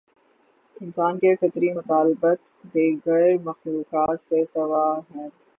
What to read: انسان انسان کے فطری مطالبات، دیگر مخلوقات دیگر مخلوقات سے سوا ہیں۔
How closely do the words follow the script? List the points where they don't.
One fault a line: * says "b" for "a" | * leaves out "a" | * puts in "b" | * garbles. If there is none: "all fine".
* leaves out "انسان"
* leaves out "دیگر مخلوقات"